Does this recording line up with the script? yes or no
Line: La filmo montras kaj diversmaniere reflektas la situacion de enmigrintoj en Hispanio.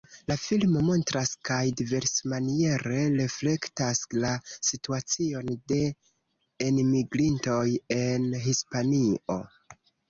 yes